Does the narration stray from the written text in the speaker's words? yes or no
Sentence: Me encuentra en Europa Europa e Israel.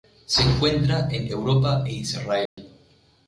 yes